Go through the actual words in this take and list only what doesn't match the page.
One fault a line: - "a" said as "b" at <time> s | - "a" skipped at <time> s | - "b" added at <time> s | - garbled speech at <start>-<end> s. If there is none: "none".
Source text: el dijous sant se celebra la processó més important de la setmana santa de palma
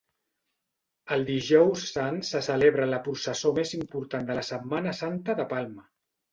none